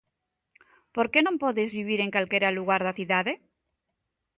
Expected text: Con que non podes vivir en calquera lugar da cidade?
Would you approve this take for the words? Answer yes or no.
no